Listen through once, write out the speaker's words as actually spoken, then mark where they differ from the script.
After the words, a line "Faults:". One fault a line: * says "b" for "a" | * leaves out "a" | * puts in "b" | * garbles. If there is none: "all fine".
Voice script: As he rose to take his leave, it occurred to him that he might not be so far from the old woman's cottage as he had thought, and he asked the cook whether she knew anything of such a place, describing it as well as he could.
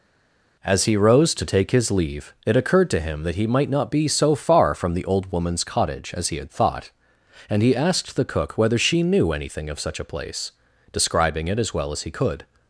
As he rose to take his leave, it occurred to him that he might not be so far from the old woman's cottage as he had thought, and he asked the cook whether she knew anything of such a place, describing it as well as he could.
Faults:
all fine